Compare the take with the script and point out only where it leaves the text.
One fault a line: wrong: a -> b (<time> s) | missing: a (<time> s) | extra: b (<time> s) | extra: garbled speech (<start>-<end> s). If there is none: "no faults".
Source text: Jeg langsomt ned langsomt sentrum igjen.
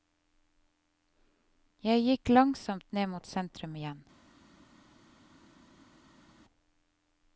extra: gikk (2.0 s)
wrong: langsomt -> mot (3.1 s)